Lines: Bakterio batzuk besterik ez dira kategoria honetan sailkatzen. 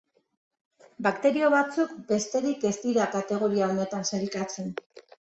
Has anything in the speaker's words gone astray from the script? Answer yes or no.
no